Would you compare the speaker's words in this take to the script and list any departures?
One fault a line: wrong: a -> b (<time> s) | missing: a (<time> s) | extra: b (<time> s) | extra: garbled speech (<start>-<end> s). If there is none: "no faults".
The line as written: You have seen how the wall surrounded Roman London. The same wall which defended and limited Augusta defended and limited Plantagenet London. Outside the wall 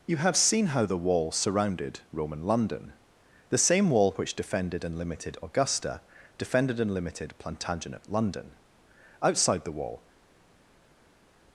no faults